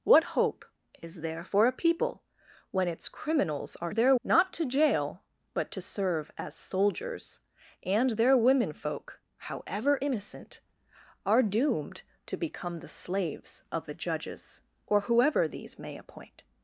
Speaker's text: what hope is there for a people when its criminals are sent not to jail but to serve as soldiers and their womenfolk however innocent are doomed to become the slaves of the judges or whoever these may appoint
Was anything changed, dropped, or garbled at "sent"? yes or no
yes